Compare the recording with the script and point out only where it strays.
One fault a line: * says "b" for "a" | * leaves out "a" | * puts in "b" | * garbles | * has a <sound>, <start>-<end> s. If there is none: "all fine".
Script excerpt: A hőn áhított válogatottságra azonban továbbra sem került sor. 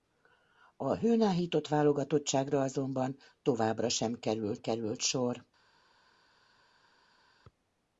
* puts in "került"